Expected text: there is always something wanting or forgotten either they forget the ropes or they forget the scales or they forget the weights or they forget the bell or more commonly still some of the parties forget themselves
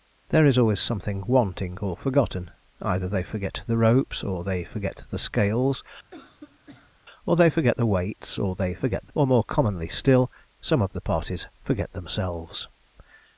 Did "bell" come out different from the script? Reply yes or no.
yes